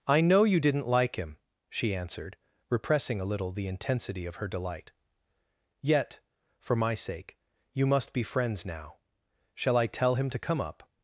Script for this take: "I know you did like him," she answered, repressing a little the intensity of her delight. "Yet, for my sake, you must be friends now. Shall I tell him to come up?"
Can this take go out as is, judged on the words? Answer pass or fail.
fail